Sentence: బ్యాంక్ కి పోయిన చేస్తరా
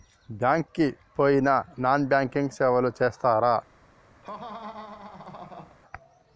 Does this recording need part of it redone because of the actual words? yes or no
yes